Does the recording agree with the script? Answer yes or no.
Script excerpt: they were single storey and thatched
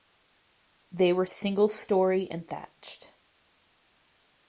yes